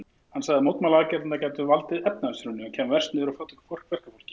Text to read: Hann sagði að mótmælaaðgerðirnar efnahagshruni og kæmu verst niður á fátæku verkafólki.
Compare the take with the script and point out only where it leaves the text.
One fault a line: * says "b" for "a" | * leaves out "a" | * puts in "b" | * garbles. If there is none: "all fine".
* puts in "gætu valdið"